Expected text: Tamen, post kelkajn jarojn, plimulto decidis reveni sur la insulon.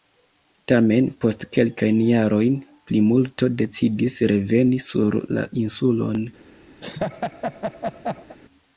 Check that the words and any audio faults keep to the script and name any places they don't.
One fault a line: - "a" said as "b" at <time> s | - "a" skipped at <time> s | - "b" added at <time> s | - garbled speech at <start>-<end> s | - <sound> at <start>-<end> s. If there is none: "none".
- laugh at 6.8-8.4 s